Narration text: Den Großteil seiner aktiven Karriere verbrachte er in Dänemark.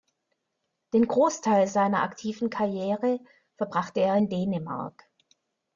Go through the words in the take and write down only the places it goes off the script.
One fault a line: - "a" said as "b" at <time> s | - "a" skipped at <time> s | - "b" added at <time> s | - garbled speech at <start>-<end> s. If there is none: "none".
none